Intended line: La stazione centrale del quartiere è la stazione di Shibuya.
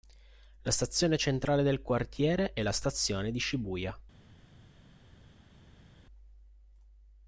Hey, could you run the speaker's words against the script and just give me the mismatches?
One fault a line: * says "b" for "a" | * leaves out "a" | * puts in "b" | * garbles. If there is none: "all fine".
all fine